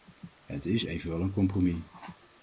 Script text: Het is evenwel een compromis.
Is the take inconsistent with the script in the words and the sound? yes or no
no